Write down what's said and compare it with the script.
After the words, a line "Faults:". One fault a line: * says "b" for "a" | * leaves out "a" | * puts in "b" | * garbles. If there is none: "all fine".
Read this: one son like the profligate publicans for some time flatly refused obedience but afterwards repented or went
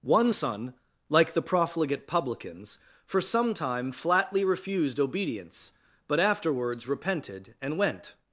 one son like the profligate publicans for some time flatly refused obedience but afterwards repented and went
Faults:
* says "and" for "or"